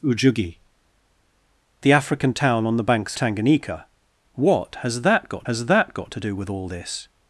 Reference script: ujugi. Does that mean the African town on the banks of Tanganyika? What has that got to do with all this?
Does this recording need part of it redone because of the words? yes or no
yes